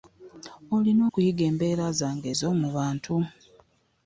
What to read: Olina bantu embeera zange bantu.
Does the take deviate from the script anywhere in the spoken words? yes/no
yes